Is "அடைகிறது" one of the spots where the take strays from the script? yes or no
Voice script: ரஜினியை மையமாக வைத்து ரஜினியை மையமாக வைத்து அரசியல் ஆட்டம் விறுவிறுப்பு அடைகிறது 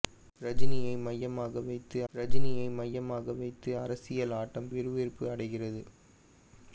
no